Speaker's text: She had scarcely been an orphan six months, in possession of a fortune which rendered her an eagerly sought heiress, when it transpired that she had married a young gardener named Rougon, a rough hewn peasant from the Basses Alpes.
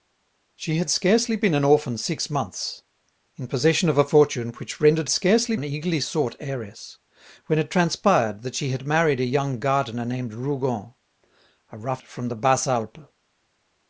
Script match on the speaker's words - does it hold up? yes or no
no